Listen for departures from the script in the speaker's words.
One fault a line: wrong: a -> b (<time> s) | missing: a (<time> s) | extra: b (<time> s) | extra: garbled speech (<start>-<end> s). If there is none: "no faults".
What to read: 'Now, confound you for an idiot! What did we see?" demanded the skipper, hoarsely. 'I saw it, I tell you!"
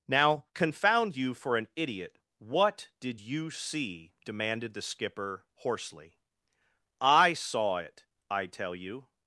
wrong: we -> you (3.2 s)